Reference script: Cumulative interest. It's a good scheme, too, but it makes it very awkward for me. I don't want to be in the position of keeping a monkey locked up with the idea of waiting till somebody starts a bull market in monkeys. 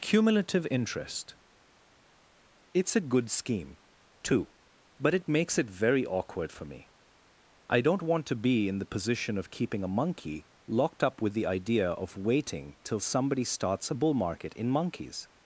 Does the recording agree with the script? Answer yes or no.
yes